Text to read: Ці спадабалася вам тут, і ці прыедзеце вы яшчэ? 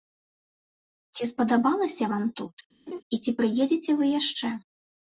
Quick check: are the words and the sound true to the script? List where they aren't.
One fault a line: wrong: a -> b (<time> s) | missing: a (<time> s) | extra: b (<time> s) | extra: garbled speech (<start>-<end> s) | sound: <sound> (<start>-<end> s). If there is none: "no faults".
sound: laugh (2.9-3.0 s)